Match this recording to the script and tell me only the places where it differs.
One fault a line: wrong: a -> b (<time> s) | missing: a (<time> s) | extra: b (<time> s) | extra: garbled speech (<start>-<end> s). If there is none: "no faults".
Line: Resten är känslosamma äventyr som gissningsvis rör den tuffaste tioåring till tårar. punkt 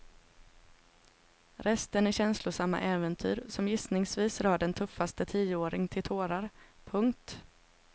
no faults